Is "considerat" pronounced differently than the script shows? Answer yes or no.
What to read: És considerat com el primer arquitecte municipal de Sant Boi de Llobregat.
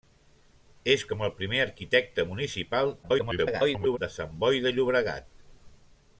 yes